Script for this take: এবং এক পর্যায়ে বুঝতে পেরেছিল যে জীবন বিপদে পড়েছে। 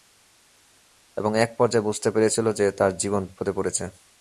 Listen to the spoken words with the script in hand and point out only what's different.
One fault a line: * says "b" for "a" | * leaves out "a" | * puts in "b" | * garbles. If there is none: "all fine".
* puts in "তার"